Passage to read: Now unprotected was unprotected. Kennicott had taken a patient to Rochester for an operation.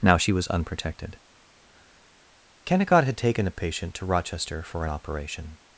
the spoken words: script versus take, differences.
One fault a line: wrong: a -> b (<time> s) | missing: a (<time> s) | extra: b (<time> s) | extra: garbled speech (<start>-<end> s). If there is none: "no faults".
wrong: unprotected -> she (0.2 s)